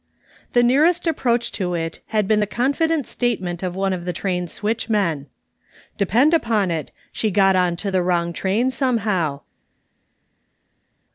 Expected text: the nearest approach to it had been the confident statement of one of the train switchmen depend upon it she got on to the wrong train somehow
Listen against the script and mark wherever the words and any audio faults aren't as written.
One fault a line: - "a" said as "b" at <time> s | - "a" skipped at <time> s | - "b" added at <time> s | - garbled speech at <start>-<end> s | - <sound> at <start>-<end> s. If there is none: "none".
none